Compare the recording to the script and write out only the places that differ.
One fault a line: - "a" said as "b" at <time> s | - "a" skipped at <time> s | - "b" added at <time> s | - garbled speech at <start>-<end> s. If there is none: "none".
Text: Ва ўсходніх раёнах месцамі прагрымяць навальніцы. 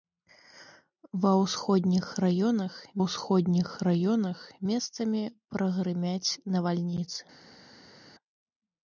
- "ўсходніх раёнах" added at 3.0 s